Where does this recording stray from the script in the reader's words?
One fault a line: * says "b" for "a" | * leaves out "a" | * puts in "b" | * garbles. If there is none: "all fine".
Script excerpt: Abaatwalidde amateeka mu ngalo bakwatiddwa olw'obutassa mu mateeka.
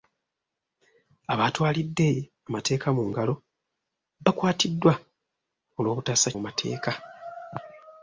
all fine